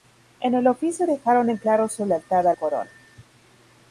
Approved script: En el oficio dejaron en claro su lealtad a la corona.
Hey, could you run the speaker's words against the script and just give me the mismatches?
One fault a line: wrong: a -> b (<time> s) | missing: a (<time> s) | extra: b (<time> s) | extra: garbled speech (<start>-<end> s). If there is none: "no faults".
missing: la (2.5 s)